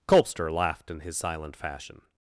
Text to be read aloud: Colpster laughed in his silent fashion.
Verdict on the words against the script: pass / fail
pass